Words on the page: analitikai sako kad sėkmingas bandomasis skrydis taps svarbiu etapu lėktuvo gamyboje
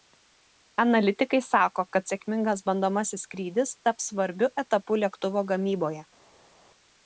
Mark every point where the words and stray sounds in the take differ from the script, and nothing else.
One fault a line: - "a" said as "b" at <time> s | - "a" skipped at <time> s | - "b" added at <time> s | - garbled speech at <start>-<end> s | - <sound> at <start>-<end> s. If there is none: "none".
none